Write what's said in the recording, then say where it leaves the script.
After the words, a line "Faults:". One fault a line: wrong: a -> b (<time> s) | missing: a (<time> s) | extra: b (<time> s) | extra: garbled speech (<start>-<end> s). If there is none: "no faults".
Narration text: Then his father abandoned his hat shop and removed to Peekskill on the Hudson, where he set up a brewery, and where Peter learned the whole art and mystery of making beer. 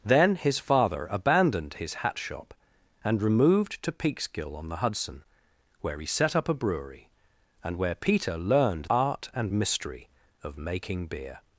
Then his father abandoned his hat shop and removed to Peekskill on the Hudson, where he set up a brewery, and where Peter learned art and mystery of making beer.
Faults:
missing: the whole (8.8 s)